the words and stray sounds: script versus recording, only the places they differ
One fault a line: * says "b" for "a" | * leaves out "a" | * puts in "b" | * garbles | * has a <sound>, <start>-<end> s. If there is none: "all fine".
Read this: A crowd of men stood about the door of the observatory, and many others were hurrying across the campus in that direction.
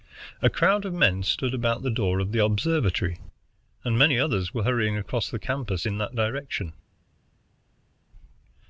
all fine